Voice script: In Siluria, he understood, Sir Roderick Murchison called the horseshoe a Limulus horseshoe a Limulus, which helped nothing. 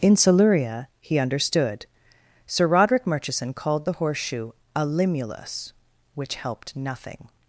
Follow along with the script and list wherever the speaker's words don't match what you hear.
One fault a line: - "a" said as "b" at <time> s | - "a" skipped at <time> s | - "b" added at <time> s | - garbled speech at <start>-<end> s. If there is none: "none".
- "horseshoe a Limulus" skipped at 5.7 s